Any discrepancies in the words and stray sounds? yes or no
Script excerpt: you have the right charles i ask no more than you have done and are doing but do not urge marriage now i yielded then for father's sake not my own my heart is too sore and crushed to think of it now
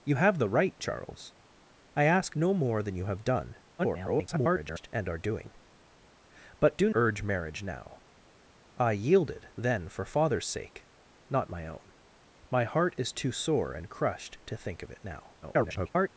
yes